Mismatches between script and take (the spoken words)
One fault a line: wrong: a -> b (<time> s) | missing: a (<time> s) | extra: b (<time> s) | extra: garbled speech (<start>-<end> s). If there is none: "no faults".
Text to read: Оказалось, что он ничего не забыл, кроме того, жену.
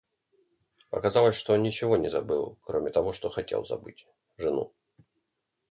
extra: что хотел забыть (3.1 s)